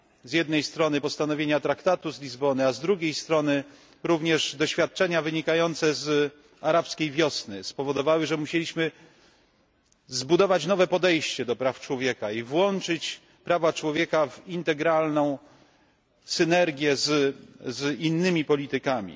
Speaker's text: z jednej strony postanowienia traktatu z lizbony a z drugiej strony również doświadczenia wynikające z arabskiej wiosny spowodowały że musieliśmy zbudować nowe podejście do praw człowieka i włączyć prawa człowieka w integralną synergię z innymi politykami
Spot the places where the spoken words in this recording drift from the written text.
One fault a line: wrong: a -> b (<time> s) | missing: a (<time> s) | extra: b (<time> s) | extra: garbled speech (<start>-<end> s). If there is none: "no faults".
no faults